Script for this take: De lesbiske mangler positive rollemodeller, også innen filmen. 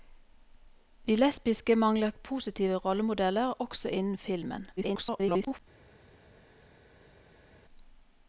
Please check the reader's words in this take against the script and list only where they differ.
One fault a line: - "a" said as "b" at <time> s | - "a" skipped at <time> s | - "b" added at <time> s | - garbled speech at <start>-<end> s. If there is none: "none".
- garbled speech at 4.8-5.6 s